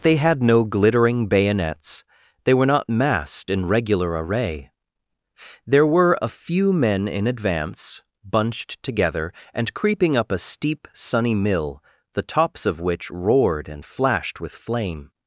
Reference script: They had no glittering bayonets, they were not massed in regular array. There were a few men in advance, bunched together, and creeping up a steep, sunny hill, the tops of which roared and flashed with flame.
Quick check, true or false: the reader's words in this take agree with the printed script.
false